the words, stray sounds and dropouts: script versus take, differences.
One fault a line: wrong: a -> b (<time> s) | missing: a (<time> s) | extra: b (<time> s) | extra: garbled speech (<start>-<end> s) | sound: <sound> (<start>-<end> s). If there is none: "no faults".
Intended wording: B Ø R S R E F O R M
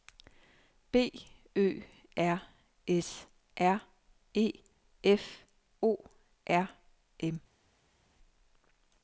no faults